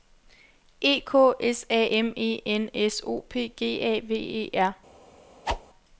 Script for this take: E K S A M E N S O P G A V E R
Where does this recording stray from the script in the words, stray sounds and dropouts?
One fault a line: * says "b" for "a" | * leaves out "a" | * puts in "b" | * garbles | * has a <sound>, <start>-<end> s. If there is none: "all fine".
* has a whoosh, 5.4-5.6 s